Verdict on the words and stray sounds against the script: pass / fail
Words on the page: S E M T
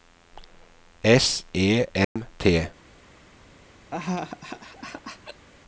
fail